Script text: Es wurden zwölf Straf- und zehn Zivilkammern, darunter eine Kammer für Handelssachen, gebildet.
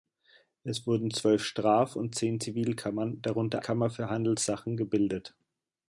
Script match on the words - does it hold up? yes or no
no